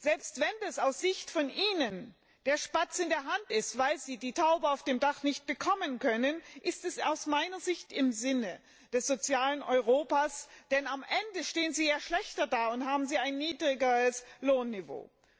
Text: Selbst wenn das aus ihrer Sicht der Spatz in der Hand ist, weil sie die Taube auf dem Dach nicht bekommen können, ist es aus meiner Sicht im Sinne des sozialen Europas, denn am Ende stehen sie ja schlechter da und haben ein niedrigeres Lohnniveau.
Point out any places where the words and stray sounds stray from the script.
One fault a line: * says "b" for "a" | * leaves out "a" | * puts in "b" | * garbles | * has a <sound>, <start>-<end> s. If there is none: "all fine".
all fine